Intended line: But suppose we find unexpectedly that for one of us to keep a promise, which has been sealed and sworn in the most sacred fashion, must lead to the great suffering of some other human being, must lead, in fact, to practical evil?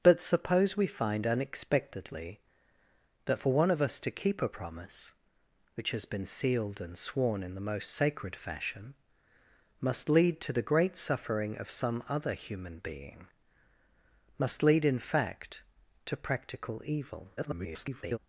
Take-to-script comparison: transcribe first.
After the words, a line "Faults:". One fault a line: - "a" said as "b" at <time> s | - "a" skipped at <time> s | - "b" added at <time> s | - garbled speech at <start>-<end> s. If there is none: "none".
But suppose we find unexpectedly that for one of us to keep a promise, which has been sealed and sworn in the most sacred fashion, must lead to the great suffering of some other human being, must lead, in fact, to practical evil? [garbled]
Faults:
- garbled speech at 17.4-18.2 s